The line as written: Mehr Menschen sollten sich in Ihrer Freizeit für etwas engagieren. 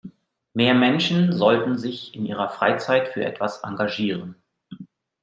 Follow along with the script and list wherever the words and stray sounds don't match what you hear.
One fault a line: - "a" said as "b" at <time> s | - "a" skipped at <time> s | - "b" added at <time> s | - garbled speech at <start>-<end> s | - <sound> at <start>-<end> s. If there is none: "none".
none